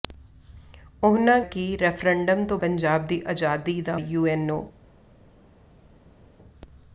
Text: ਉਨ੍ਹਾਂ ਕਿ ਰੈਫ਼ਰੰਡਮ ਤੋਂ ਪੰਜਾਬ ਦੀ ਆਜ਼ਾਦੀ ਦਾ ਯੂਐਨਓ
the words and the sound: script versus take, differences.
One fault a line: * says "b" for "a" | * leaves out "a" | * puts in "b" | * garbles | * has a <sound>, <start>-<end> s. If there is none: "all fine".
all fine